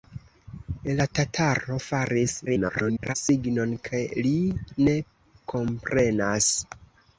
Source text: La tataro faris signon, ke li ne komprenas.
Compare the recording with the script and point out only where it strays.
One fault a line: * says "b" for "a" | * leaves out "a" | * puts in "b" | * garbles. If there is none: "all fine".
* garbles